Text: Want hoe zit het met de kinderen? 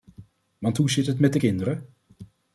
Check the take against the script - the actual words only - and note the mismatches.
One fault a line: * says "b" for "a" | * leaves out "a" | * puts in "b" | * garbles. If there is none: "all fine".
all fine